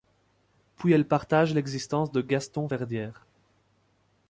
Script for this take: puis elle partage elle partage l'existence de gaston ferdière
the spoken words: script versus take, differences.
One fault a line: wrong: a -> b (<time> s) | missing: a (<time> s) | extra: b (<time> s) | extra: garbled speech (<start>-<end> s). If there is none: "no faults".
missing: elle partage (1.5 s)